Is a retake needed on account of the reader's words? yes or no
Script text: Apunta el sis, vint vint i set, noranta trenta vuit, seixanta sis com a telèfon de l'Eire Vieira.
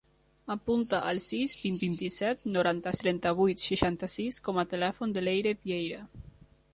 no